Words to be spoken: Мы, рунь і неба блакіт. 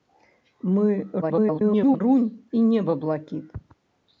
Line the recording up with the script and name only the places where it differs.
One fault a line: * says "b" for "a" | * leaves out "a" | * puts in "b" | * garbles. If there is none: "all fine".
* garbles